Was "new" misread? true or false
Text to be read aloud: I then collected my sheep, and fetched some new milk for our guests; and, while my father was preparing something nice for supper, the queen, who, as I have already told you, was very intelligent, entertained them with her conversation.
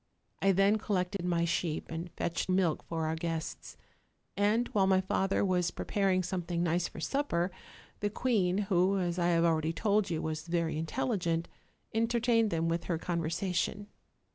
true